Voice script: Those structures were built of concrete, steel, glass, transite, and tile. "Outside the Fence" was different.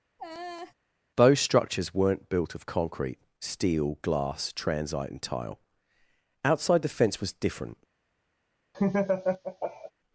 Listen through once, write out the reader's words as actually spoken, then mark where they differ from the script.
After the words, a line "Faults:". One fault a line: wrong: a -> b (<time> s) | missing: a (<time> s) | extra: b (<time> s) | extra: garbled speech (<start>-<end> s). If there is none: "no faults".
Those structures weren't built of concrete, steel, glass, transite, and tile. "Outside the Fence" was different.
Faults:
wrong: were -> weren't (1.9 s)